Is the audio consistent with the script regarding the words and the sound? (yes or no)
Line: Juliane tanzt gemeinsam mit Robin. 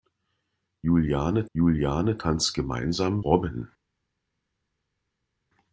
no